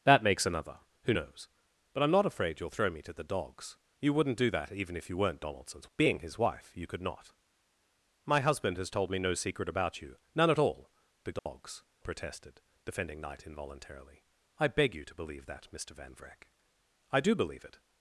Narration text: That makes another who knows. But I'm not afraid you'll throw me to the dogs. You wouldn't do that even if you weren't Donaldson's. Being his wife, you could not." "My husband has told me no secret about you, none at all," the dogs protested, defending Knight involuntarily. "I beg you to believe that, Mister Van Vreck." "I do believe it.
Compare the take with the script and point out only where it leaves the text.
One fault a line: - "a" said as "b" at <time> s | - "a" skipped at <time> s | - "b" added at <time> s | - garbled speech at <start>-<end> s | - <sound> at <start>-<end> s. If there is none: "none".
- dropout at 11.4-11.5 s